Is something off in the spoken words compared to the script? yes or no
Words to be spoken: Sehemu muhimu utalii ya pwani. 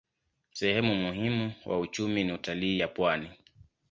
yes